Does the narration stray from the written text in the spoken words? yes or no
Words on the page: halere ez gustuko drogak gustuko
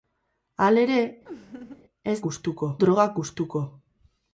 no